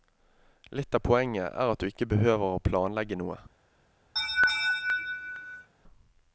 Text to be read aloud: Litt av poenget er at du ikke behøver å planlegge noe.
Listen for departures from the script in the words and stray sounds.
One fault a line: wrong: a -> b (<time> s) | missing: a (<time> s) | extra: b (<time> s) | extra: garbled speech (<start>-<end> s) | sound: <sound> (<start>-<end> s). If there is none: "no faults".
sound: laugh (4.2-5.7 s)